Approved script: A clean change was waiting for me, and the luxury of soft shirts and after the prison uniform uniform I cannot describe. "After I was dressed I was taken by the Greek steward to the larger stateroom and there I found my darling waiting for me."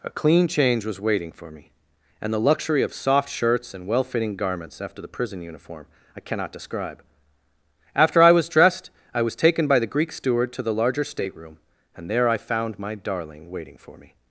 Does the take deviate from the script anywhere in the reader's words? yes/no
yes